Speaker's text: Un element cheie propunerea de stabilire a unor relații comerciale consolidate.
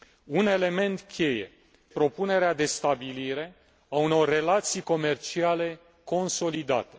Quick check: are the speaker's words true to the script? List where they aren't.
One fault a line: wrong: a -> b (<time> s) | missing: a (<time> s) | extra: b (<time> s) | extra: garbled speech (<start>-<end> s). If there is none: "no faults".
no faults